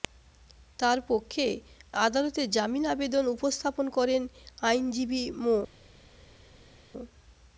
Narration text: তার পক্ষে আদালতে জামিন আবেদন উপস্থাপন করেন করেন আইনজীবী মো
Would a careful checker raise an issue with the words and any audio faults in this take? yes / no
yes